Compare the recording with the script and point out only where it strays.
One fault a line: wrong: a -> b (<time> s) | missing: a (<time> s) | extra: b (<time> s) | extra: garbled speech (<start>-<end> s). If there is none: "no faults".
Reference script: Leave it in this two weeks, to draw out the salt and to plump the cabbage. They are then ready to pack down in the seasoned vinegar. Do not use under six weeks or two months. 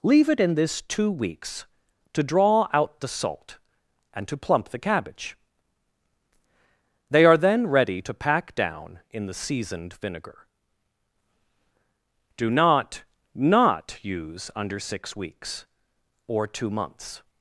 extra: not (13.3 s)